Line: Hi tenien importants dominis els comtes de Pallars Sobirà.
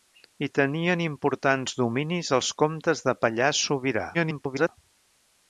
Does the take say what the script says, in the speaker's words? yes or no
no